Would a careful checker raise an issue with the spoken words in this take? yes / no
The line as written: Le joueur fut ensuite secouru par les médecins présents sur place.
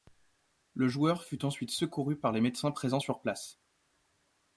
no